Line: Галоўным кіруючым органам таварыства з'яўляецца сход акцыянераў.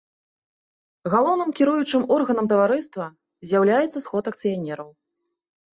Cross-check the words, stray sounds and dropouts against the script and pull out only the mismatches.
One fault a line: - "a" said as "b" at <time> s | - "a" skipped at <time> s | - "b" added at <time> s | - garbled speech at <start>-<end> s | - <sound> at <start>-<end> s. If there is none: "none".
none